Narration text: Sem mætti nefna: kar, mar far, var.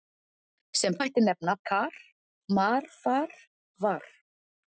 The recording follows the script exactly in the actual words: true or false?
true